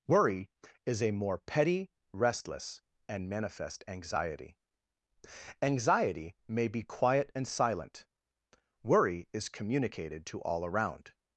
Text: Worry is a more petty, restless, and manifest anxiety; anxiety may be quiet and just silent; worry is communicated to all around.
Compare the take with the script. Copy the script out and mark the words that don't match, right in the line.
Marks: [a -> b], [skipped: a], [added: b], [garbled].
Worry is a more petty, restless, and manifest anxiety; anxiety may be quiet and [skipped: just] silent; worry is communicated to all around.